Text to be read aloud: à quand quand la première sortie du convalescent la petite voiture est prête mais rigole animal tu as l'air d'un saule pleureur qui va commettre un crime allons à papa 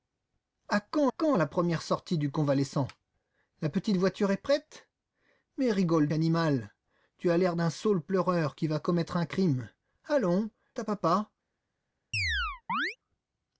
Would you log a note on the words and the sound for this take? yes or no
yes